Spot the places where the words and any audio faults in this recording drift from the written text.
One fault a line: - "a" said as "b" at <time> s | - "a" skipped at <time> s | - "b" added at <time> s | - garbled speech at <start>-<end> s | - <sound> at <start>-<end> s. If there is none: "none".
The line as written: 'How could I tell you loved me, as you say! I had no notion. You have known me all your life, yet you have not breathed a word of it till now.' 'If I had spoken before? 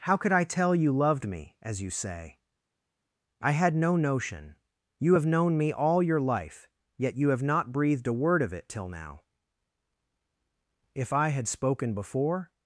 none